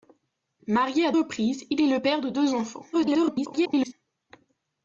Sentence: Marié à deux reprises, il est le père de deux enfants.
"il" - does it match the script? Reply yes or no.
yes